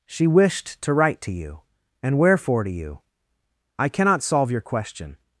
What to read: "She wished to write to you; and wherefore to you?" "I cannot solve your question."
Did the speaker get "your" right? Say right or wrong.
right